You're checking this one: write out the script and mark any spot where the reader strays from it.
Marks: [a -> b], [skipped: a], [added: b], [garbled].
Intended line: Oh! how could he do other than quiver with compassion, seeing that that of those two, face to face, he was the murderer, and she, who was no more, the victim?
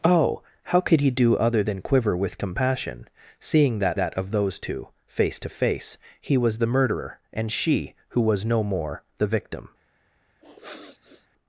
Oh! how could he do other than quiver with compassion, seeing that that of those two, face to face, he was the murderer, and she, who was no more, the victim?